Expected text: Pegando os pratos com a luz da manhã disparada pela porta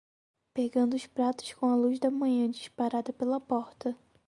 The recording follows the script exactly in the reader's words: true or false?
true